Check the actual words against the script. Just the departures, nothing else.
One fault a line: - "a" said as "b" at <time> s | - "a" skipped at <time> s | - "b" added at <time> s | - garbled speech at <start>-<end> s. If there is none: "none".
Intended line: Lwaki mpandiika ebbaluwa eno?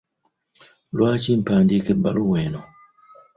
none